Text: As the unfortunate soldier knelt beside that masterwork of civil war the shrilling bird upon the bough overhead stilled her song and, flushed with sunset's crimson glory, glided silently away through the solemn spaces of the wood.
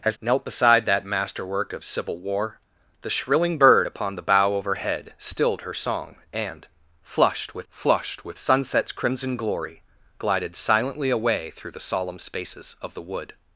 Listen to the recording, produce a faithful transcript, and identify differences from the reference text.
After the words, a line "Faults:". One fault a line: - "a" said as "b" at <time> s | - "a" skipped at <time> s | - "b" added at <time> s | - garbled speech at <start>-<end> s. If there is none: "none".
As knelt beside that masterwork of civil war the shrilling bird upon the bough overhead stilled her song and, flushed with flushed with sunset's crimson glory, glided silently away through the solemn spaces of the wood.
Faults:
- "the unfortunate soldier" skipped at 0.1 s
- "flushed with" added at 7.7 s